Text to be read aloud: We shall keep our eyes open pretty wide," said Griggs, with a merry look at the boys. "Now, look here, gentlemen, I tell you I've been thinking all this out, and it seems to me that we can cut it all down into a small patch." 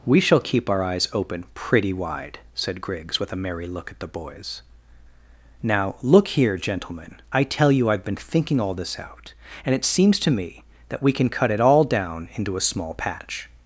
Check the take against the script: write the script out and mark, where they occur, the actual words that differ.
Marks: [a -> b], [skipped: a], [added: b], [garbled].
We shall keep our eyes open pretty wide," said Griggs, with a merry look at the boys. "Now, look here, gentlemen, I tell you I've been thinking all this out, and it seems to me that we can cut it all down into a small patch."